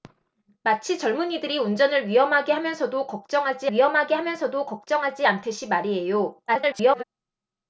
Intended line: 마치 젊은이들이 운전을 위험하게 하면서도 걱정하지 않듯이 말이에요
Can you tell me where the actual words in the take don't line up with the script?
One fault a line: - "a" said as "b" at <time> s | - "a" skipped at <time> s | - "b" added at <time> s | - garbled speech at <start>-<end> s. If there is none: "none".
- "위험하게 하면서도 걱정하지" added at 3.7 s
- garbled speech at 6.5-7.0 s